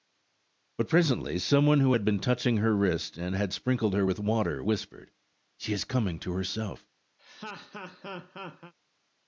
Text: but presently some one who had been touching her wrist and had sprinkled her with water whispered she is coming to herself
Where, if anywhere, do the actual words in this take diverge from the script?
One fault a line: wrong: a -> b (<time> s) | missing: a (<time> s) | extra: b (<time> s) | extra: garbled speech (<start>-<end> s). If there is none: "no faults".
no faults